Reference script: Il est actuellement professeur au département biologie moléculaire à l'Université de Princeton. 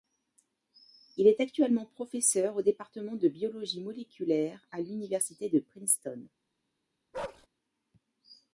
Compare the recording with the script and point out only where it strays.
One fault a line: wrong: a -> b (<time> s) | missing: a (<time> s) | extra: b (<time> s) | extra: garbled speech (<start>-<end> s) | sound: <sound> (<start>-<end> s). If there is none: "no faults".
extra: de (3.2 s)
sound: bark (7.1-7.5 s)